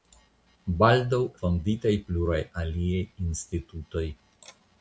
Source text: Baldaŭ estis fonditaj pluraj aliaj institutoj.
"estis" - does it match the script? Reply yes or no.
no